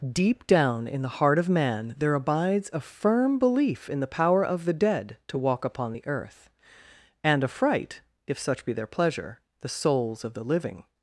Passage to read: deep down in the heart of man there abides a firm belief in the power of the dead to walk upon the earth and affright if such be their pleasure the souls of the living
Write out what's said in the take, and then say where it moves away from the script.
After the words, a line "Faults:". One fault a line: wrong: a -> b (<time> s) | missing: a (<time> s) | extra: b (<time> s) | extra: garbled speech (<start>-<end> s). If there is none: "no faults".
deep down in the heart of man there abides a firm belief in the power of the dead to walk upon the earth and affright if such be their pleasure the souls of the living
Faults:
no faults